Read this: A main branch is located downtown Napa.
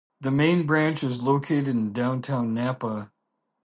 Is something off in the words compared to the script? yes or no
yes